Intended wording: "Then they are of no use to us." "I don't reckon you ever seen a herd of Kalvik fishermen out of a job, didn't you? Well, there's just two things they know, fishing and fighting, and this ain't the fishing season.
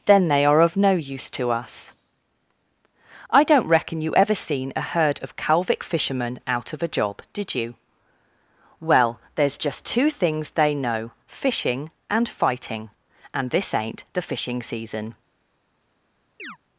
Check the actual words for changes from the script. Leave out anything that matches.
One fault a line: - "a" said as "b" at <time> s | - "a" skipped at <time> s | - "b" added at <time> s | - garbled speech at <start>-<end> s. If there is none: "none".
- "didn't" said as "did" at 7.3 s